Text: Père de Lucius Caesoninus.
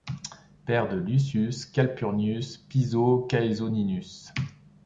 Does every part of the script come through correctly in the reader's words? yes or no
no